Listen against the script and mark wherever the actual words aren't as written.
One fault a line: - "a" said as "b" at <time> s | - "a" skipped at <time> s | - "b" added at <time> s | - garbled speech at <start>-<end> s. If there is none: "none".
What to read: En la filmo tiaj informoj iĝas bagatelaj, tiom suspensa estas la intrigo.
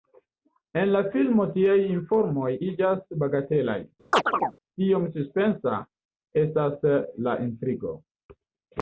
none